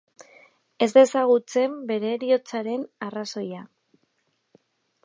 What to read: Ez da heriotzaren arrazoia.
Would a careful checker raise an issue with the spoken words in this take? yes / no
yes